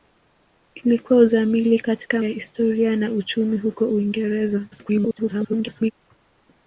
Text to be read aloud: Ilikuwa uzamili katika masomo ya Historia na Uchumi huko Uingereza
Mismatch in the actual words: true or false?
true